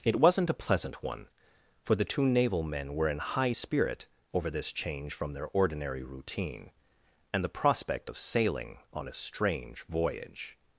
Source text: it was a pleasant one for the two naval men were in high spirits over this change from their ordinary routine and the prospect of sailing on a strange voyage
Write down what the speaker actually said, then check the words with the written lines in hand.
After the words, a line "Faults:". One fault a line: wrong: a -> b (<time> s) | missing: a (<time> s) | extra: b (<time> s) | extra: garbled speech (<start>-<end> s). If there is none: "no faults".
it wasn't a pleasant one for the two naval men were in high spirit over this change from their ordinary routine and the prospect of sailing on a strange voyage
Faults:
wrong: was -> wasn't (0.1 s)
wrong: spirits -> spirit (3.5 s)